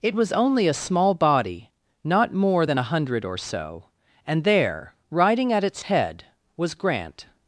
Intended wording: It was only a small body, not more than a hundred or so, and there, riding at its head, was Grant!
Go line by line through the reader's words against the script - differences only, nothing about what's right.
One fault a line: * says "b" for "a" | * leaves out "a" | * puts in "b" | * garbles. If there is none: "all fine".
all fine